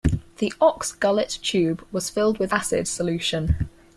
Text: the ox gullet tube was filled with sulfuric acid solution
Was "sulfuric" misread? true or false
true